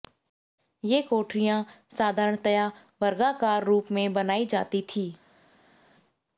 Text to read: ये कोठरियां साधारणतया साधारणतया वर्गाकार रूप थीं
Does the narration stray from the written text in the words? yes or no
yes